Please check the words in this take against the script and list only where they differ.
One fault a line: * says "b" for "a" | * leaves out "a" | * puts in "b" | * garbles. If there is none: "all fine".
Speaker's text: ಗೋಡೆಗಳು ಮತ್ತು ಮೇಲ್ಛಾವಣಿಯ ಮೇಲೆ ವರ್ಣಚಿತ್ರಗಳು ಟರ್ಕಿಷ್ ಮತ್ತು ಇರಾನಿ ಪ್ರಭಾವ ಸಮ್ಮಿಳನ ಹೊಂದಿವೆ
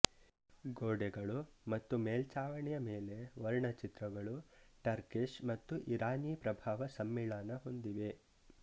all fine